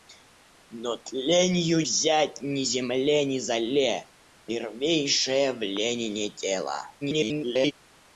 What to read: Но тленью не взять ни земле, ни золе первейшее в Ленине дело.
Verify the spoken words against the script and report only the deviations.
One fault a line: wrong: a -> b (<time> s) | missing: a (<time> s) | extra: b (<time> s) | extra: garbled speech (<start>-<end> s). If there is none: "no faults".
missing: не (1.8 s)
extra: garbled speech (7.0-7.7 s)